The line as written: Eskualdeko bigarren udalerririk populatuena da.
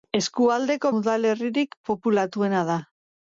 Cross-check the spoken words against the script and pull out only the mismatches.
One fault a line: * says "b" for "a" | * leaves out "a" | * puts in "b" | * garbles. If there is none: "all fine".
* leaves out "bigarren"